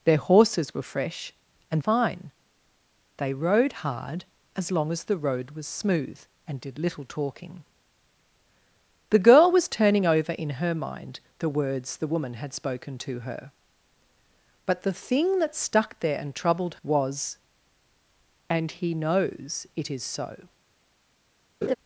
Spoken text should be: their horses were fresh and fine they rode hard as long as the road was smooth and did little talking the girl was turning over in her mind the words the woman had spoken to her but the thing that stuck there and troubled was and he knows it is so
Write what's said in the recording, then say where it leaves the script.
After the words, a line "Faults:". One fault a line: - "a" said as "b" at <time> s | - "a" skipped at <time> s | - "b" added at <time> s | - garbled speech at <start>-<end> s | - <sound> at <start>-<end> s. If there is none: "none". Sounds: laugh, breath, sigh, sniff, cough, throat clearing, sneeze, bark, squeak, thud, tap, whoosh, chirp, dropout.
their horses were fresh and fine they rode hard as long as the road was smooth and did little talking the girl was turning over in her mind the words the woman had spoken to her but the thing that stuck there and troubled was and he knows it is so
Faults:
- laugh at 21.6-21.8 s